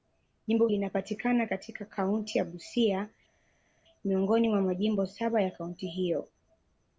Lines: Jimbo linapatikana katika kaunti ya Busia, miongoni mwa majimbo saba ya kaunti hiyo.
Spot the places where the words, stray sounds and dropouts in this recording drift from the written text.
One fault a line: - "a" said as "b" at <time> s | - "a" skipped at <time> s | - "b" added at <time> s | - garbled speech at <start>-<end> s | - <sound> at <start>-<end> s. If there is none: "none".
none